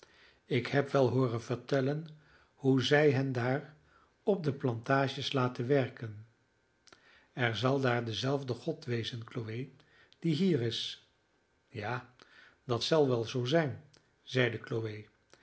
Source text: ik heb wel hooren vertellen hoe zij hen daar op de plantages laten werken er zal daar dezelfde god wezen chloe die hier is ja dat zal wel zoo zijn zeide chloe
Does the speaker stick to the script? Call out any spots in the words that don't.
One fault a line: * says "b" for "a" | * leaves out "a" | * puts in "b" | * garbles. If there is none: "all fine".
all fine